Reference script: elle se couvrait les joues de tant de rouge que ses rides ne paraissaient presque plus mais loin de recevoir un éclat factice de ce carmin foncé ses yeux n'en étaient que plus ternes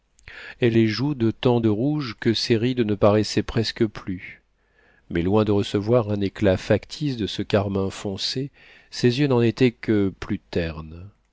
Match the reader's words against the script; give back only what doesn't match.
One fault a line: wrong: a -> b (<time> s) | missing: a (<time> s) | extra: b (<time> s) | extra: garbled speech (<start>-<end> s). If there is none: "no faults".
missing: se couvrait (0.8 s)